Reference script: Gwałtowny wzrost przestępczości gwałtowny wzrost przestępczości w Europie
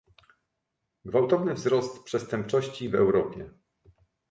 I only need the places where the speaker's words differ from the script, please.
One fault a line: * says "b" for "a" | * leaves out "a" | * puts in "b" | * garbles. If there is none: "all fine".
* leaves out "gwałtowny wzrost przestępczości"